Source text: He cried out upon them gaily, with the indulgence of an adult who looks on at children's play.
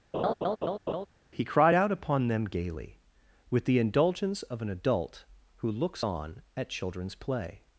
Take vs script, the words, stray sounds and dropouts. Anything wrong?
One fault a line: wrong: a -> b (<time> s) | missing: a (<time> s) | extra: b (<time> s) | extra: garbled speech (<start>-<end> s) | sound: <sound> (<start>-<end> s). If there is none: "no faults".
sound: laugh (0.1-1.1 s)